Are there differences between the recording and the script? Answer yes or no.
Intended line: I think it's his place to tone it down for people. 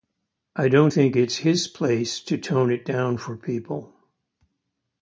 yes